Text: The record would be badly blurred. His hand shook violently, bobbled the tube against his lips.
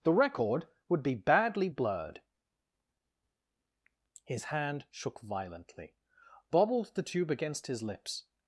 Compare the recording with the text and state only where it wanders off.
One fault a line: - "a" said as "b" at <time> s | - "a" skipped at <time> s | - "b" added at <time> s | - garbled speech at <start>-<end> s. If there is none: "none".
none